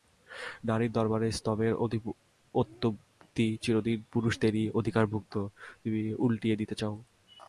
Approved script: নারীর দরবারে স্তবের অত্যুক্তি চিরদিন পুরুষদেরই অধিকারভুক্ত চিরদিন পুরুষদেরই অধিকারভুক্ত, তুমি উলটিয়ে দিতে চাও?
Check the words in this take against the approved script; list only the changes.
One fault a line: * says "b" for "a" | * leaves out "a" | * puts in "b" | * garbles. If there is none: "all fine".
* leaves out "চিরদিন পুরুষদেরই অধিকারভুক্ত"